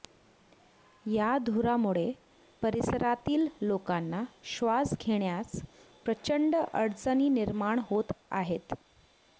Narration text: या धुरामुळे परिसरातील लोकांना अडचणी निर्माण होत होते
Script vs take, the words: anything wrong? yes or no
yes